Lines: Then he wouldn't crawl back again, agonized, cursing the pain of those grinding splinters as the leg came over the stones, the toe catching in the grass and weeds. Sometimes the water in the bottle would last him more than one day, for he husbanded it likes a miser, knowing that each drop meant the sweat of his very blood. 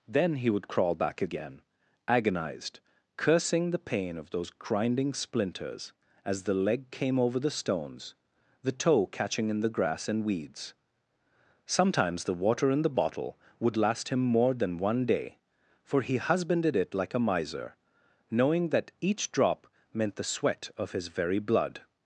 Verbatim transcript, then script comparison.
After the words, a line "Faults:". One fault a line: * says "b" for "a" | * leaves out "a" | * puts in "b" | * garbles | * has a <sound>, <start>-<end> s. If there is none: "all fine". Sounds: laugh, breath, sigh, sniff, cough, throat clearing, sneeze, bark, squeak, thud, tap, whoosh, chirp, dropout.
Then he would crawl back again, agonized, cursing the pain of those grinding splinters as the leg came over the stones, the toe catching in the grass and weeds. Sometimes the water in the bottle would last him more than one day, for he husbanded it like a miser, knowing that each drop meant the sweat of his very blood.
Faults:
* says "would" for "wouldn't"
* says "like" for "likes"